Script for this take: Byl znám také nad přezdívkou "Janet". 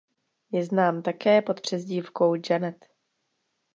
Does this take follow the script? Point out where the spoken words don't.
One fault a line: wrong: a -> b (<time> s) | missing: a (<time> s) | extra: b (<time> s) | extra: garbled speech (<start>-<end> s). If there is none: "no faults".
wrong: Byl -> Je (0.5 s)
wrong: nad -> pod (1.4 s)